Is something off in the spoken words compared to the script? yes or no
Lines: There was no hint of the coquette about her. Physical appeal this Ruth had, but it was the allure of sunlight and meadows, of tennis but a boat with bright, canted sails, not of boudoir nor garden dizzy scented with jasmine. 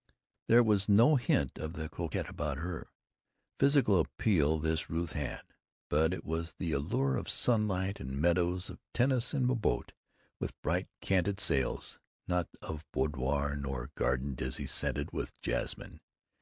yes